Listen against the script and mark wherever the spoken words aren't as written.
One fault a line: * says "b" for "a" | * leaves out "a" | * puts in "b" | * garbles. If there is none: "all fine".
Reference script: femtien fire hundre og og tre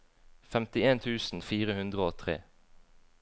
* puts in "tusen"
* leaves out "og"